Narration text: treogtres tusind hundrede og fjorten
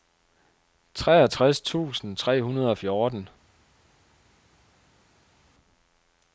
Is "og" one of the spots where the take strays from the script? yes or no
no